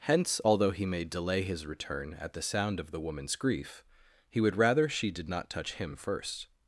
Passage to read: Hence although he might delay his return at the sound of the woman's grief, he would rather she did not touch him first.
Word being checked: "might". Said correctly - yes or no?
no